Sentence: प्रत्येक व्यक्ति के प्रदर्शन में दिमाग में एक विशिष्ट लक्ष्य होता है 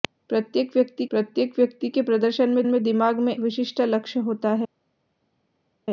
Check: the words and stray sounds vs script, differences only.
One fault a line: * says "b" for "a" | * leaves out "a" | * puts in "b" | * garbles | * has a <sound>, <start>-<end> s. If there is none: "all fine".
* puts in "प्रत्येक व्यक्ति"
* puts in "में"
* leaves out "एक"